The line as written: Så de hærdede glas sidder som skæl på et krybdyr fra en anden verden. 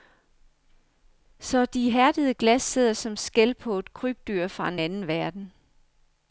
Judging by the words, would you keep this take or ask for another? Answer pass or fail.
pass